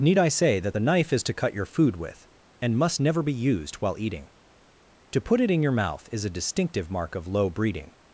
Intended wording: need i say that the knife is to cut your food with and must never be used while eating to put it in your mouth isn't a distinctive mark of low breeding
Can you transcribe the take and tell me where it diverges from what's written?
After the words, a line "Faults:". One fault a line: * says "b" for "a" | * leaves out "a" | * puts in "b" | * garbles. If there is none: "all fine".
need i say that the knife is to cut your food with and must never be used while eating to put it in your mouth is a distinctive mark of low breeding
Faults:
* says "is" for "isn't"